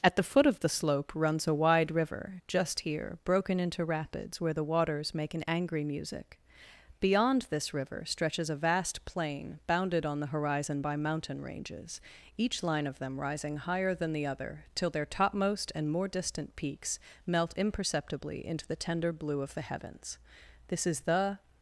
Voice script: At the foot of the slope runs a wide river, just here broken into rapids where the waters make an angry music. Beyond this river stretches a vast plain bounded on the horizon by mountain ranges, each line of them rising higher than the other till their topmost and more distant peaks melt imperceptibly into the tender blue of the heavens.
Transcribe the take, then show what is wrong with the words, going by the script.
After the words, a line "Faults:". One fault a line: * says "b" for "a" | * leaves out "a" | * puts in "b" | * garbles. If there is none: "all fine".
At the foot of the slope runs a wide river, just here broken into rapids where the waters make an angry music. Beyond this river stretches a vast plain bounded on the horizon by mountain ranges, each line of them rising higher than the other till their topmost and more distant peaks melt imperceptibly into the tender blue of the heavens. This is the
Faults:
* puts in "This is the"